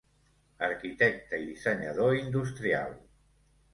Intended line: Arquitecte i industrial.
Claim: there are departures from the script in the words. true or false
true